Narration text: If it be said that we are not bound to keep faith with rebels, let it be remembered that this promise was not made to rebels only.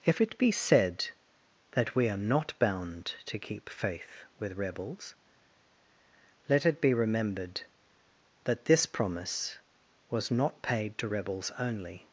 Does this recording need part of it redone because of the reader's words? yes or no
yes